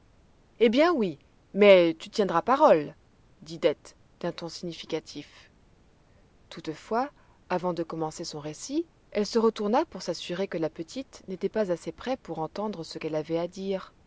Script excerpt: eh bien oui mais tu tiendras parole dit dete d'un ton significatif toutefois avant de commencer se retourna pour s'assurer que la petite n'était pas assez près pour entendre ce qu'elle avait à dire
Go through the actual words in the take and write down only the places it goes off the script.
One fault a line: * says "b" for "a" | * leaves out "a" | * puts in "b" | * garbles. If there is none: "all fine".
* puts in "son récit elle"